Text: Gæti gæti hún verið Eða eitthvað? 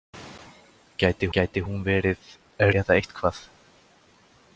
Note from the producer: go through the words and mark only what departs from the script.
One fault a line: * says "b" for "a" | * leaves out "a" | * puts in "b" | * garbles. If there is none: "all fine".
all fine